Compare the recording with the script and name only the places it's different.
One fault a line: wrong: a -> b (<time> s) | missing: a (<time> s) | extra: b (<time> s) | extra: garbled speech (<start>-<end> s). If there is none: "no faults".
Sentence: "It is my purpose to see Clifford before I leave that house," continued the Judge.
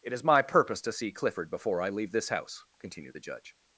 wrong: that -> this (2.1 s)